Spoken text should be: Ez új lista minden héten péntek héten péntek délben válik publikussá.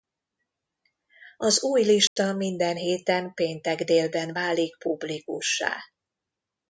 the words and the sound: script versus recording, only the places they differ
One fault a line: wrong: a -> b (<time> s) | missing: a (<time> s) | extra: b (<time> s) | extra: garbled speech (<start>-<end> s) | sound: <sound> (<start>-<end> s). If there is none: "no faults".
wrong: Ez -> Az (1.4 s)
sound: dropout (2.1-2.2 s)
missing: héten péntek (3.8 s)